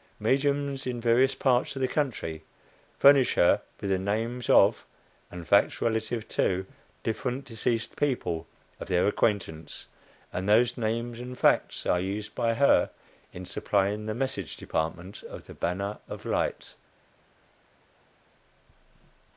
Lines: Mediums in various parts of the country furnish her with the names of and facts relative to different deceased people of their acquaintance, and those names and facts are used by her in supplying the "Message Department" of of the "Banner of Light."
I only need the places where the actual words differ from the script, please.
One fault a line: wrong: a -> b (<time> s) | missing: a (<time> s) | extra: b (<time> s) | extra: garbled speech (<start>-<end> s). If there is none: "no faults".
missing: of (15.5 s)